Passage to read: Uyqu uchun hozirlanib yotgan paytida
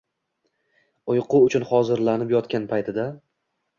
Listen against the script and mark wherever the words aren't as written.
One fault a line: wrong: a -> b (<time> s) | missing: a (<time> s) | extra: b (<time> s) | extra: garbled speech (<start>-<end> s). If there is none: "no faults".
no faults